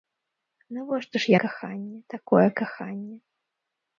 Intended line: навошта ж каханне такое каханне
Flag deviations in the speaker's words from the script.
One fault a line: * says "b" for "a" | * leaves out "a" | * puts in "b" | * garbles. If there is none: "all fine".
all fine